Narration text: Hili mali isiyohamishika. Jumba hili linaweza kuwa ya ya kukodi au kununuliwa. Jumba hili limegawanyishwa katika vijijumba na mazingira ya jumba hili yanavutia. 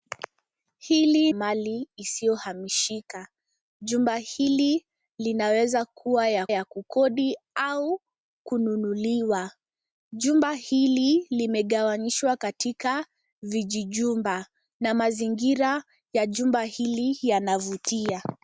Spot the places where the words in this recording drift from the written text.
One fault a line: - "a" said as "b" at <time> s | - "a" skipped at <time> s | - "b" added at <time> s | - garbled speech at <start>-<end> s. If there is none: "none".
none